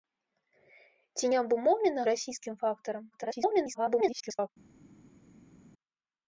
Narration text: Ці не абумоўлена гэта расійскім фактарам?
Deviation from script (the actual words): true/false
true